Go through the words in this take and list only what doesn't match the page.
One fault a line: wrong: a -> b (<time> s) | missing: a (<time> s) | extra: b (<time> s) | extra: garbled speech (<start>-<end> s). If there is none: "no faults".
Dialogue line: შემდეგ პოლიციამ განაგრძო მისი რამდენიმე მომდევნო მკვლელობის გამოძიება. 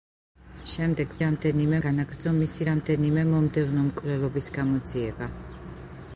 wrong: პოლიციამ -> რამდენიმე (1.2 s)